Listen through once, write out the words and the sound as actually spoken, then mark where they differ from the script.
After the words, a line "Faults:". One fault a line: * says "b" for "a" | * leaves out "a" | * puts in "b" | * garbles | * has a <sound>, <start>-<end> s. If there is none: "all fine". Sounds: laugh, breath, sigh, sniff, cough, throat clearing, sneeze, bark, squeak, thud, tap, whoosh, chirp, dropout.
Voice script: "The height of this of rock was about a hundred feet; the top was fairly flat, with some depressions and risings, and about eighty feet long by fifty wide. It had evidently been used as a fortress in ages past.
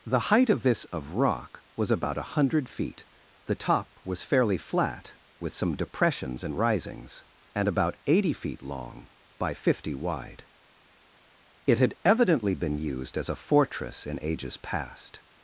"The height of this of rock was about a hundred feet; the top was fairly flat, with some depressions and risings, and about eighty feet long by fifty wide. It had evidently been used as a fortress in ages past.
Faults:
all fine